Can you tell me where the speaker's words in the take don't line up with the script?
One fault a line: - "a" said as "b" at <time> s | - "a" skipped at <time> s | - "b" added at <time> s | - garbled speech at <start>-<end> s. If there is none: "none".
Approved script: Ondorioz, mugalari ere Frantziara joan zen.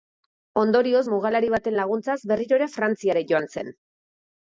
- "baten laguntzaz berriro" added at 1.5 s